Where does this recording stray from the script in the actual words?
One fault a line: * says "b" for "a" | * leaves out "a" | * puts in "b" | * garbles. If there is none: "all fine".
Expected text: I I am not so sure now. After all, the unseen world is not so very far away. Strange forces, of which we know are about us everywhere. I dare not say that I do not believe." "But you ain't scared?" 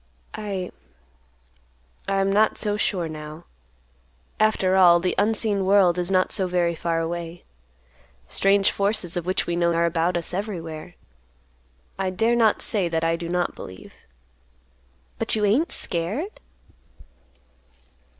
all fine